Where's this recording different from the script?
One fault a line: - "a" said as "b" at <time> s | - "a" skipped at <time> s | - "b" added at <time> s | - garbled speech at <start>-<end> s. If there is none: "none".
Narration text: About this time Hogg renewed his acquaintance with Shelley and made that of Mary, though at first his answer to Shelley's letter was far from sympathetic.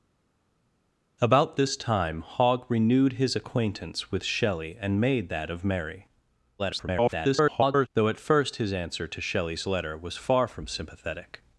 - garbled speech at 6.6-7.9 s